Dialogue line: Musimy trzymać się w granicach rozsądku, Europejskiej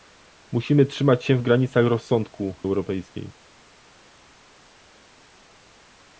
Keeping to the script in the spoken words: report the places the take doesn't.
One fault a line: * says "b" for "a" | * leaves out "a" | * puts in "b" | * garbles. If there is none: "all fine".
all fine